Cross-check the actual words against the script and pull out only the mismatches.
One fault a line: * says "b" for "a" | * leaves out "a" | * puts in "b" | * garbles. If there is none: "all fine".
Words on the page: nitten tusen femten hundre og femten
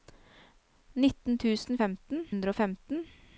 all fine